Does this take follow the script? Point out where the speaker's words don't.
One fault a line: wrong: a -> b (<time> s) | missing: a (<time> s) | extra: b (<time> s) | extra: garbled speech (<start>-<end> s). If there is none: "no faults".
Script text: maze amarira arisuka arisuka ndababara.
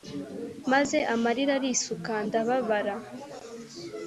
missing: arisuka (2.1 s)